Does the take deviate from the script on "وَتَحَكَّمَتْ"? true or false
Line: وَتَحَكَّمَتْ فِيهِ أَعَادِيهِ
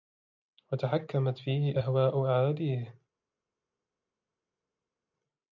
false